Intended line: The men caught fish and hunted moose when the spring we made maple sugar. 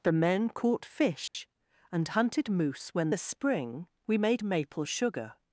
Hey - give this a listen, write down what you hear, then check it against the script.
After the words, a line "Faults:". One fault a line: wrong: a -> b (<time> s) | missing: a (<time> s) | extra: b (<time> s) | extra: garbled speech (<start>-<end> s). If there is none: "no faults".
The men caught fish and hunted moose when the spring we made maple sugar.
Faults:
no faults